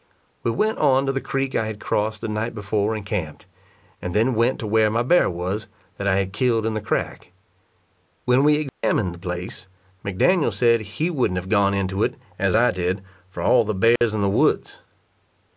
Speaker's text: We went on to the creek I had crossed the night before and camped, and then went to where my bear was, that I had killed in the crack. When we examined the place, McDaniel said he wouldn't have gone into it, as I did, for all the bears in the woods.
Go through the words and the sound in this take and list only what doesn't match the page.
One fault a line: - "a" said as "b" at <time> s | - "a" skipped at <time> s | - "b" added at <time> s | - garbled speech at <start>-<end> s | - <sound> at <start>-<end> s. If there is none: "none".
- dropout at 8.7-8.8 s
- dropout at 14.0-14.0 s